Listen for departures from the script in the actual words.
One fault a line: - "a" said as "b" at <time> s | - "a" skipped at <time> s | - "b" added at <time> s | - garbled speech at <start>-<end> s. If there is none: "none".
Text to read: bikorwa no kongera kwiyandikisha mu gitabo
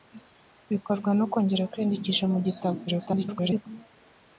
- garbled speech at 2.9-3.7 s